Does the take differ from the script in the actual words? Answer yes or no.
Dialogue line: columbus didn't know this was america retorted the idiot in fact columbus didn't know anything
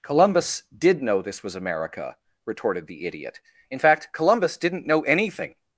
yes